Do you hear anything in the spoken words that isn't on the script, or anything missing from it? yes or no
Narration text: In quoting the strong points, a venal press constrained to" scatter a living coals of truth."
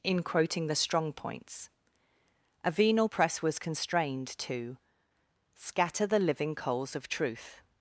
yes